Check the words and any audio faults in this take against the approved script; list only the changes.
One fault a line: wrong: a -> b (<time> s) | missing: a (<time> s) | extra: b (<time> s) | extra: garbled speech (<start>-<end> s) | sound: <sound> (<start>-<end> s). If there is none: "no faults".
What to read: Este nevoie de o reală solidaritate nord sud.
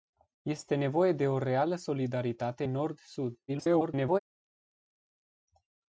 extra: garbled speech (3.5-4.2 s)